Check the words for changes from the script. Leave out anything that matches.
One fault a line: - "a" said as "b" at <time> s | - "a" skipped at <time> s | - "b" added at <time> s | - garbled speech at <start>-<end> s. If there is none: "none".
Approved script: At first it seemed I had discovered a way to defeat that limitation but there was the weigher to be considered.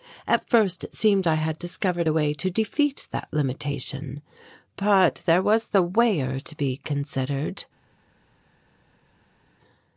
none